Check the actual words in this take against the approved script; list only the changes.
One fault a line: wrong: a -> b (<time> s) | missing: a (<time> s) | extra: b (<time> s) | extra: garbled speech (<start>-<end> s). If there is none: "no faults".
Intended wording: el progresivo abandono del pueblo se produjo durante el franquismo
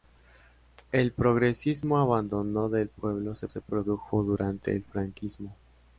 extra: se (3.5 s)